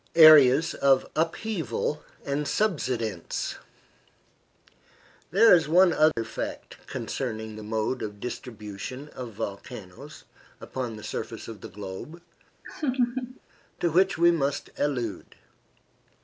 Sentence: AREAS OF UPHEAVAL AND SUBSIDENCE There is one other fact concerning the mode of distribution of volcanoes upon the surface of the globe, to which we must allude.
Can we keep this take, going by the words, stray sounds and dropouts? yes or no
no